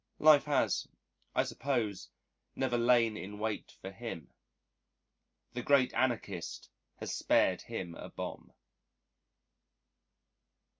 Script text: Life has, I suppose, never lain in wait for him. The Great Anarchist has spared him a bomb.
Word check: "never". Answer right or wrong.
right